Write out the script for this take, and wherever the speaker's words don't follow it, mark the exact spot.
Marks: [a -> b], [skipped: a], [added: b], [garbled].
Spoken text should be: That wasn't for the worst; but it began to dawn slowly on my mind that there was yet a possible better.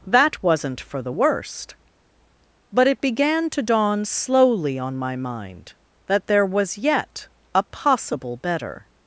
That wasn't for the worst; but it began to dawn slowly on my mind that there was yet a possible better.